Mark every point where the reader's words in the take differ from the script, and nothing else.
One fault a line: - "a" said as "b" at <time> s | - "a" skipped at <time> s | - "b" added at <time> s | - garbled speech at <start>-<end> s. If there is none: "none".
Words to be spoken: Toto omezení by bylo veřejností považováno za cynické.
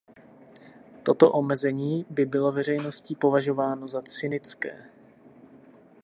none